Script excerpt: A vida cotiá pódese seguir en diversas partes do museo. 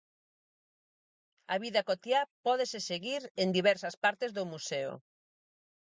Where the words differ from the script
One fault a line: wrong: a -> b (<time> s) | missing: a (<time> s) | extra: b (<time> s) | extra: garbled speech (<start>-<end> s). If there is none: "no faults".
no faults